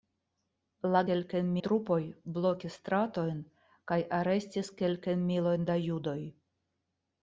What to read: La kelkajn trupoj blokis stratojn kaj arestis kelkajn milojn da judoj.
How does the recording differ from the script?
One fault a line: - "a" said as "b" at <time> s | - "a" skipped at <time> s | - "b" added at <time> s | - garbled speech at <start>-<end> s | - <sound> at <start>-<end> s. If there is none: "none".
none